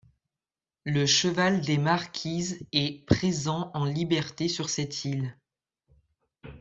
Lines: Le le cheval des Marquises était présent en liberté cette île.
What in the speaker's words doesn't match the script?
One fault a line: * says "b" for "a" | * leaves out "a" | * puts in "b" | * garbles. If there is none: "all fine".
* leaves out "le"
* says "est" for "était"
* puts in "sur"